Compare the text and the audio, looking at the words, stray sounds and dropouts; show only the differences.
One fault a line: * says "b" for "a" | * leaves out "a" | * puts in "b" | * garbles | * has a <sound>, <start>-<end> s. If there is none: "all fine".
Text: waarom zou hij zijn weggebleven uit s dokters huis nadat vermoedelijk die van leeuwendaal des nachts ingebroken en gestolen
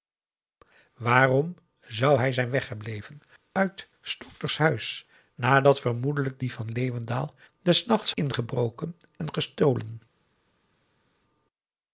all fine